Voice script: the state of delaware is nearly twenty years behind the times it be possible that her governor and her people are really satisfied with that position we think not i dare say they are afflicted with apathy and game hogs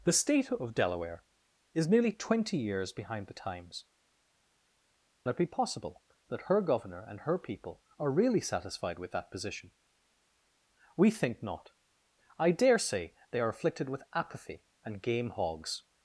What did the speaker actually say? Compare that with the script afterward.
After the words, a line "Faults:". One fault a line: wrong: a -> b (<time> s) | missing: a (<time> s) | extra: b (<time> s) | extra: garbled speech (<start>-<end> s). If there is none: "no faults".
the state of delaware is nearly twenty years behind the times it be possible that her governor and her people are really satisfied with that position we think not i dare say they are afflicted with apathy and game hogs
Faults:
no faults